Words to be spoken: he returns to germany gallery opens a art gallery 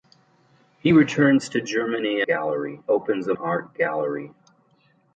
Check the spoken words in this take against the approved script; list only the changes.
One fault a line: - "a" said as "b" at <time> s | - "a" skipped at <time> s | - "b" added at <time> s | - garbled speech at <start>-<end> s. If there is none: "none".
none